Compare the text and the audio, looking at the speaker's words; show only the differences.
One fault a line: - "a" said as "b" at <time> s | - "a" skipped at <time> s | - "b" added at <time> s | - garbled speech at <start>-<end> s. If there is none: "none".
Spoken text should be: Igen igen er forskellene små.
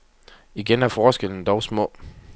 - "igen" skipped at 0.8 s
- "dog" added at 1.4 s